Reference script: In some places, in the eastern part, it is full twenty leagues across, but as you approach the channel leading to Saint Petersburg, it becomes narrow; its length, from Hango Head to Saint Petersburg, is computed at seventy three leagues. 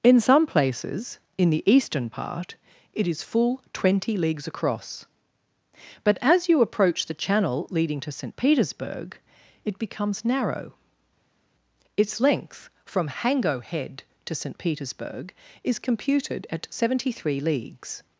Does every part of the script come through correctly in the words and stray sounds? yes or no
yes